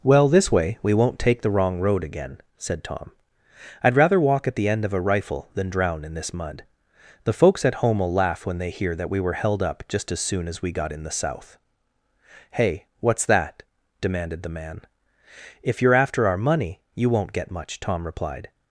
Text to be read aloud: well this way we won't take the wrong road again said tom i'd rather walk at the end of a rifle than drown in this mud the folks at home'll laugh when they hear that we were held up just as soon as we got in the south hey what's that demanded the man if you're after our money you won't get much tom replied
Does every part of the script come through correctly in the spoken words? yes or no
yes